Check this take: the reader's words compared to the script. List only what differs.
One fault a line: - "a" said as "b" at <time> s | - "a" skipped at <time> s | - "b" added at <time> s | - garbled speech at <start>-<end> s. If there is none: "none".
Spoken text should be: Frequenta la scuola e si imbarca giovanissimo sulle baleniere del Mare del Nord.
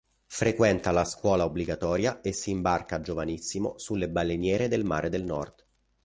- "obbligatoria" added at 1.4 s